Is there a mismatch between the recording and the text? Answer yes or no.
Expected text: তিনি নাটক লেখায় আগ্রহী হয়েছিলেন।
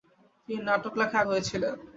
yes